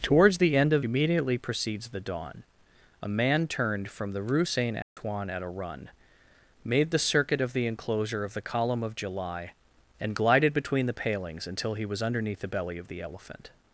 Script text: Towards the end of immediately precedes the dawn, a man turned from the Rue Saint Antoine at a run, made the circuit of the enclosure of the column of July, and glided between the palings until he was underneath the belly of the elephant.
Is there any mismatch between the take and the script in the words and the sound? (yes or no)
yes